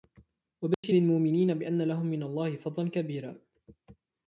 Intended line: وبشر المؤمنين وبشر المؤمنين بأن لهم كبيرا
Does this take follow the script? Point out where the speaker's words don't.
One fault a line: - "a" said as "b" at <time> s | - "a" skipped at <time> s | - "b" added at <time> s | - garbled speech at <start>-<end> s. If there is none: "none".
- "وبشر المؤمنين بأن لهم" said as "بأن لهم من الله فضلا" at 1.5 s